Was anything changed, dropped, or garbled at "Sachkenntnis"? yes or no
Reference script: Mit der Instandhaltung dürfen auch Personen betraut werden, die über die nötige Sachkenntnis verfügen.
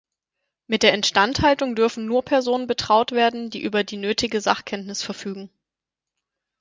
no